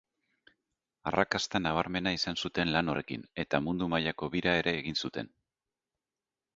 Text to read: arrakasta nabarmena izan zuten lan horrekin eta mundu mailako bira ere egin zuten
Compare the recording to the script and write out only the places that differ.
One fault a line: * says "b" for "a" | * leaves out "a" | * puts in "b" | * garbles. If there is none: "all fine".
all fine